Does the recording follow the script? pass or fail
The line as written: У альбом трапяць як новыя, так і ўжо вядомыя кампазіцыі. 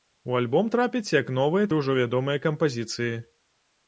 fail